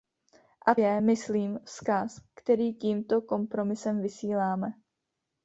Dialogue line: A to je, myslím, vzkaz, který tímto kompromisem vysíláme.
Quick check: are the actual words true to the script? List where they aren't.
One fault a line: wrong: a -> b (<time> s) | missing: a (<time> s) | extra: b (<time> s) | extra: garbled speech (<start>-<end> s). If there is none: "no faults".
missing: to (0.8 s)